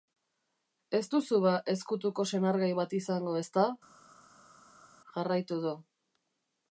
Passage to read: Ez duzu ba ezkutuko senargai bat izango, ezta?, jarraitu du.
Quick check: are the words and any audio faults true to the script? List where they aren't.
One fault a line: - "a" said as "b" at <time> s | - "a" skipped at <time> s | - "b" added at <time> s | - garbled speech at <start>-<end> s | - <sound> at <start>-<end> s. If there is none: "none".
none